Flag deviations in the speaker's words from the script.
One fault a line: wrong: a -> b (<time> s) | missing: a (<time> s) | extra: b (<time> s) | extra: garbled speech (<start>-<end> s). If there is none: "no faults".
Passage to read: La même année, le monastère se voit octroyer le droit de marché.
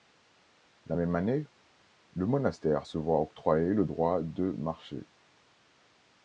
no faults